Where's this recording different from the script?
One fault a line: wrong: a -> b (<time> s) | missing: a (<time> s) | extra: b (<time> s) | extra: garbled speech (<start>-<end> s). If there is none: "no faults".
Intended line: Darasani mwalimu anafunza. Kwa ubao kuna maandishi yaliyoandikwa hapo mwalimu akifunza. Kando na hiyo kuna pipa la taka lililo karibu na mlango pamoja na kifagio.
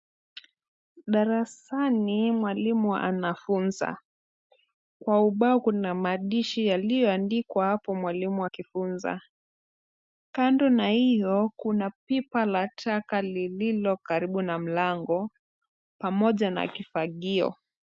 no faults